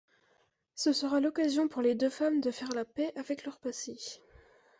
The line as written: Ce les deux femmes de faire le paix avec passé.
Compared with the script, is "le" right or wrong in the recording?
wrong